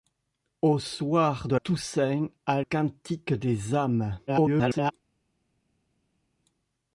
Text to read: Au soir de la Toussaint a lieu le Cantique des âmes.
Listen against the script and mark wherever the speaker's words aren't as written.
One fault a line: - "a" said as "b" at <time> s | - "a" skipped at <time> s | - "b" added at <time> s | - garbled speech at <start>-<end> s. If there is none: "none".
- "la" skipped at 1.6 s
- "lieu le" skipped at 2.6 s
- garbled speech at 4.3-4.9 s